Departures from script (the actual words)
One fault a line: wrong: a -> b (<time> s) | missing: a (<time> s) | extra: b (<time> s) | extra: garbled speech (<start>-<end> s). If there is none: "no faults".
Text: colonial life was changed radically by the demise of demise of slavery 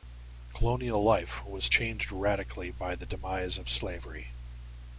missing: demise of (3.7 s)